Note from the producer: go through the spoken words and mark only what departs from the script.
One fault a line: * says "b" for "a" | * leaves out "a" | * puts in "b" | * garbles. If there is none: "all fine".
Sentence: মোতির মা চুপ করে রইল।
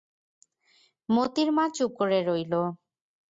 all fine